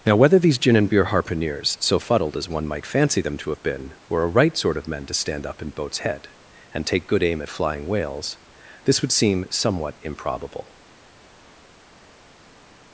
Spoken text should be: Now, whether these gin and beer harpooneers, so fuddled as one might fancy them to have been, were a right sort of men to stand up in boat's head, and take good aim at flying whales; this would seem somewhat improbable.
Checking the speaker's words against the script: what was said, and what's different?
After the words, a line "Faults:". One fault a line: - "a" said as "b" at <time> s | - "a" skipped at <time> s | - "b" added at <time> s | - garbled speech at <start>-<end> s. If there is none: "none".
Now, whether these gin and beer harpooneers, so fuddled as one might fancy them to have been, were a right sort of men to stand up in boat's head, and take good aim at flying whales; this would seem somewhat improbable.
Faults:
none